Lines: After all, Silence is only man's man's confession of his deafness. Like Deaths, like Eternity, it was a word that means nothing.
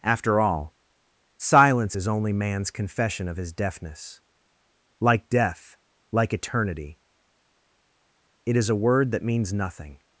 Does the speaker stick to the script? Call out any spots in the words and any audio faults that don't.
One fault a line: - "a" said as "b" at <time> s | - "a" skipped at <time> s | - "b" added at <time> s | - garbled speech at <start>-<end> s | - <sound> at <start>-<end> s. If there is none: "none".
- "man's" skipped at 2.7 s
- "Deaths" said as "Death" at 5.3 s
- "was" said as "is" at 8.6 s